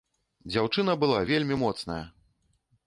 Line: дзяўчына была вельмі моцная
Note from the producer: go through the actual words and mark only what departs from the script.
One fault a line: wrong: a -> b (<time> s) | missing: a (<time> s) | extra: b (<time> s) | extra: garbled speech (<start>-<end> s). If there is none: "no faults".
no faults